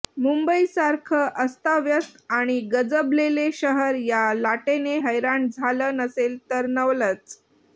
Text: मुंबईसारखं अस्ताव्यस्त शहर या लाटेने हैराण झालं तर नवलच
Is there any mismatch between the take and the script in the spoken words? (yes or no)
yes